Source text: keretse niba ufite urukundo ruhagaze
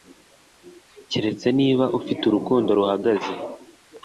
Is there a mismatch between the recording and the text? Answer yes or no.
no